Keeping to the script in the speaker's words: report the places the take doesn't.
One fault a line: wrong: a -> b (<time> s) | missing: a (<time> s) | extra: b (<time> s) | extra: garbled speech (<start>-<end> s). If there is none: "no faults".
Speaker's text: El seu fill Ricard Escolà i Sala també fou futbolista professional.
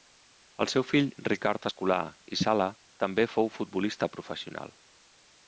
no faults